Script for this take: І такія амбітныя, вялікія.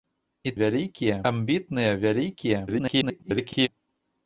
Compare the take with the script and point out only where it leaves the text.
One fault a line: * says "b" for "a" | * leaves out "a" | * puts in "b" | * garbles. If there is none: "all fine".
* says "вялікія" for "такія"
* garbles